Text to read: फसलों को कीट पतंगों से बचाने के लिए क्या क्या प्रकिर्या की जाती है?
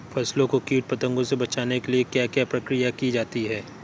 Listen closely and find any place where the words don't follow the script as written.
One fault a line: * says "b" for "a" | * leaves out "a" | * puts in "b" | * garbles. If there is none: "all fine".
all fine